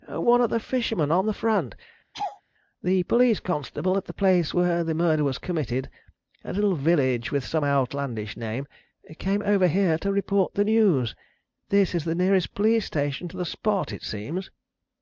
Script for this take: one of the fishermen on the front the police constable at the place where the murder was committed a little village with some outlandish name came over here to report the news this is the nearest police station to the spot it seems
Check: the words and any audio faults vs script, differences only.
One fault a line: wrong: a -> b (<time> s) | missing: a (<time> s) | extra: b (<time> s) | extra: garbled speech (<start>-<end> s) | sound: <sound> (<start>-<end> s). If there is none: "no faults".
sound: laugh (2.1-2.4 s)